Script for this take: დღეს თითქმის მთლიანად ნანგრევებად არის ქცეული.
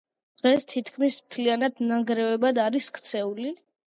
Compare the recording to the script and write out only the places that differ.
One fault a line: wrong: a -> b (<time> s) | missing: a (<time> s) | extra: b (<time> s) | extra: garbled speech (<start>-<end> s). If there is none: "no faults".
no faults